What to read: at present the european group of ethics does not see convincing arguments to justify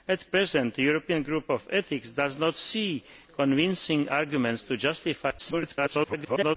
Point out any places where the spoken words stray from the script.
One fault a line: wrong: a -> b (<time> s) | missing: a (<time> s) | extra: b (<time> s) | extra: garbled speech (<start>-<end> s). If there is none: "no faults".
extra: garbled speech (5.4-6.6 s)